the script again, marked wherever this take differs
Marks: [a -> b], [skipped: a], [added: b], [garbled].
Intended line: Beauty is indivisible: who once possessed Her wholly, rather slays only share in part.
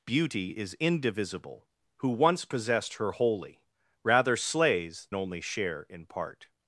Beauty is indivisible: who once possessed Her wholly, rather slays only share in part.